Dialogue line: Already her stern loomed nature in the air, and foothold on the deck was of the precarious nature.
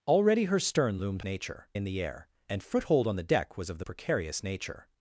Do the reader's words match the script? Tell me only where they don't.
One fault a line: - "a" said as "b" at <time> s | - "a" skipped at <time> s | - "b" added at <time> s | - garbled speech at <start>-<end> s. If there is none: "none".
none